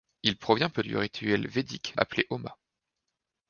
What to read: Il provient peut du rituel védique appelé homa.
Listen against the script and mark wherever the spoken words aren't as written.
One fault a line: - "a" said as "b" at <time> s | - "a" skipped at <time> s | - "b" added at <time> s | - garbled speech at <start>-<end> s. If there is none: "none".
none